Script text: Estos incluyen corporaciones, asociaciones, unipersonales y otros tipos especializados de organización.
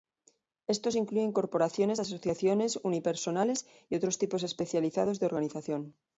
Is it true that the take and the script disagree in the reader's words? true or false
false